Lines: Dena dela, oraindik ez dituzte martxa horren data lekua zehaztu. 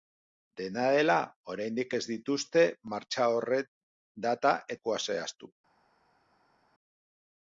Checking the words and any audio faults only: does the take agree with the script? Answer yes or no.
yes